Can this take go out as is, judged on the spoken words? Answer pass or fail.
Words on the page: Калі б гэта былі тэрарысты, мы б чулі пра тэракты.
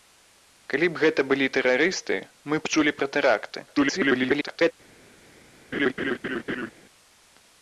fail